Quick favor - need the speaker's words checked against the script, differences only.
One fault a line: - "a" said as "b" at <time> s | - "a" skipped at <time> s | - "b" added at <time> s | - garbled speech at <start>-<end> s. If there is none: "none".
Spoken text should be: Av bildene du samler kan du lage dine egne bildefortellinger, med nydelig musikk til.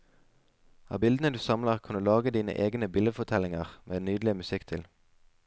none